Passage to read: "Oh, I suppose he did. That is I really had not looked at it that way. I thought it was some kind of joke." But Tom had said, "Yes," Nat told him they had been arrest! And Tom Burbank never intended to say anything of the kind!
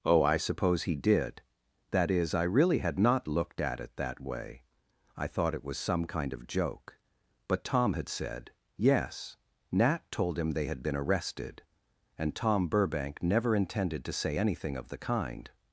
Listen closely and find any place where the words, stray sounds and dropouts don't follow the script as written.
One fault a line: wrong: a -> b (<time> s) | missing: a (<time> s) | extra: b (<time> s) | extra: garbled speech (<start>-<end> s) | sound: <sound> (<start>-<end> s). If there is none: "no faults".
wrong: arrest -> arrested (11.0 s)